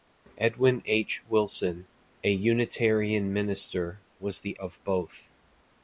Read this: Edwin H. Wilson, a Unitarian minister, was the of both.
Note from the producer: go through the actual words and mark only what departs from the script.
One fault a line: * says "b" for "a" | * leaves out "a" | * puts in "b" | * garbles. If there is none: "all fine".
all fine